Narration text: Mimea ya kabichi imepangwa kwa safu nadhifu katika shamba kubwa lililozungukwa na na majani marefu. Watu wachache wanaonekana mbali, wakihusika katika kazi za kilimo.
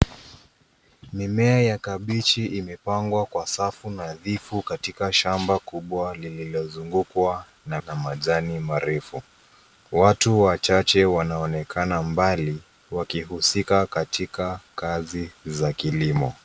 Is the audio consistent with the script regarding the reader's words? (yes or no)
yes